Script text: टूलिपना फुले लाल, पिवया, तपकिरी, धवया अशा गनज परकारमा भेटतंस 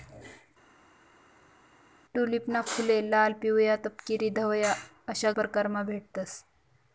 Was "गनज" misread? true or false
true